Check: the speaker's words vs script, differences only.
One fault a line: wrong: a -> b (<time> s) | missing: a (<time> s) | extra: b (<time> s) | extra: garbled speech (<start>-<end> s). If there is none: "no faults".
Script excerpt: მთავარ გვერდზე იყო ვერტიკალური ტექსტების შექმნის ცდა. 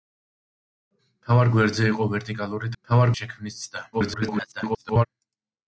wrong: ტექსტების -> მთავარ (2.8 s)
extra: garbled speech (3.9-5.1 s)